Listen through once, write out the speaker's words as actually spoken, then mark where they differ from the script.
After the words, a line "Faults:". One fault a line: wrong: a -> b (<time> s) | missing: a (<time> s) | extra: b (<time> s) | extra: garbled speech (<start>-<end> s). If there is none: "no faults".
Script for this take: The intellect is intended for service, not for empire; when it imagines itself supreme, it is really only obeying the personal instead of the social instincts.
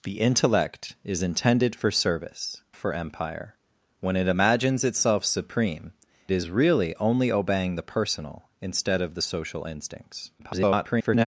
The intellect is intended for service, for empire; when it imagines itself supreme, is really only obeying the personal instead of the social instincts. [garbled]
Faults:
missing: not (2.6 s)
missing: it (5.9 s)
extra: garbled speech (10.4-11.3 s)